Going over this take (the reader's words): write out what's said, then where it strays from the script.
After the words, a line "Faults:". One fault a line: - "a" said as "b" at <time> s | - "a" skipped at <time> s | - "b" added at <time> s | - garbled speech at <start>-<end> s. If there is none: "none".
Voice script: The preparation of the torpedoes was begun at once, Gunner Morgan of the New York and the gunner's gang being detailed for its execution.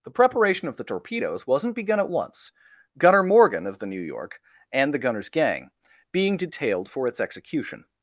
The preparation of the torpedoes wasn't begun at once, Gunner Morgan of the New York and the gunner's gang being detailed for its execution.
Faults:
- "was" said as "wasn't" at 1.4 s